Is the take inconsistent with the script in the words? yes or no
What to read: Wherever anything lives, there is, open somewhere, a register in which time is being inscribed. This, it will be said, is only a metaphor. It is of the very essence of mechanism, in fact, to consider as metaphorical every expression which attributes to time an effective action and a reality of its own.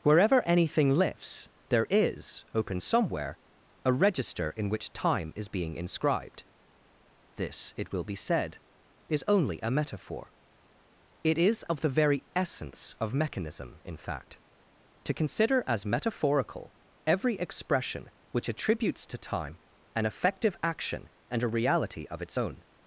yes